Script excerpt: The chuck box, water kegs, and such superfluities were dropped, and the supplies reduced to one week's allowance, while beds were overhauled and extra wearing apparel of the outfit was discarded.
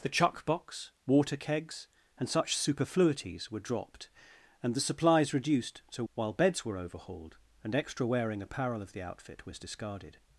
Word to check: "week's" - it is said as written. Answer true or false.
false